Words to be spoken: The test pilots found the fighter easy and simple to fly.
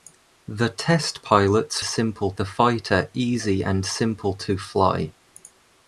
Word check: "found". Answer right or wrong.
wrong